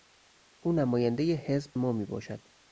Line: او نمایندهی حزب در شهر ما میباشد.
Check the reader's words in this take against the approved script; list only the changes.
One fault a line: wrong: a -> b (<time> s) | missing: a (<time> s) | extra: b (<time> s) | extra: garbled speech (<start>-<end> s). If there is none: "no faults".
missing: در شهر (1.8 s)